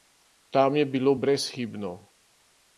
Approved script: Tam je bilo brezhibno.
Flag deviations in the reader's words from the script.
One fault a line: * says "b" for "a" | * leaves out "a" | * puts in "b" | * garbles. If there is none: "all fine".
all fine